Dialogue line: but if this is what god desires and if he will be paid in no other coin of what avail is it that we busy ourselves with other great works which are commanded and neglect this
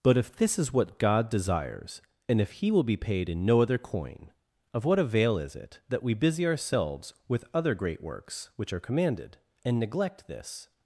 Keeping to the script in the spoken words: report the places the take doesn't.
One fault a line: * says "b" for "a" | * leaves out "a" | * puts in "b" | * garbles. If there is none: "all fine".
all fine